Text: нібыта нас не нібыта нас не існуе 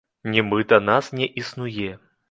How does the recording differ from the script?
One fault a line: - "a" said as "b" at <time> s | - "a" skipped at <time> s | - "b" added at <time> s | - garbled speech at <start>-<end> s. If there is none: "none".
- "нібыта нас не" skipped at 1.3 s